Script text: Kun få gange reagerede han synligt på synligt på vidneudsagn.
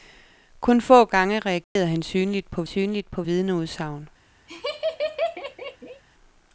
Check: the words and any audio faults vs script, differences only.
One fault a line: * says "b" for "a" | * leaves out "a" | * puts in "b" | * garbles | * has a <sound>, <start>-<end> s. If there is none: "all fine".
* has a dropout, 1.6-1.8 s
* has a laugh, 4.5-6.0 s